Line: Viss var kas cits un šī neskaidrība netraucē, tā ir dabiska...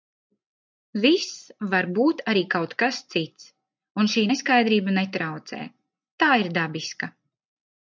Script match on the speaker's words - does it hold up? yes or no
no